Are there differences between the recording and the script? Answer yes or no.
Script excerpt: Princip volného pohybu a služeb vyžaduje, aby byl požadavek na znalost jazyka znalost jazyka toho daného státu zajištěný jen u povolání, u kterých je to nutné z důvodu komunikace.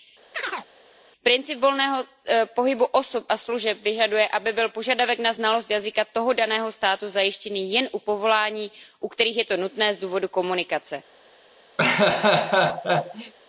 yes